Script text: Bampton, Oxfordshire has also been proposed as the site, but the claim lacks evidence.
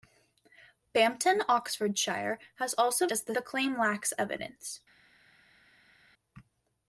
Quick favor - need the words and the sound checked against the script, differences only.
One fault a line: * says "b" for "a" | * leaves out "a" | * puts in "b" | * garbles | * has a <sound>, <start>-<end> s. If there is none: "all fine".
* leaves out "been proposed"
* leaves out "site but"